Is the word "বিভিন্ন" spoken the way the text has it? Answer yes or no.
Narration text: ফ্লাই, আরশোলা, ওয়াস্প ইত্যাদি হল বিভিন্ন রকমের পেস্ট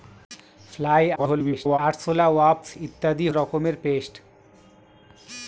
no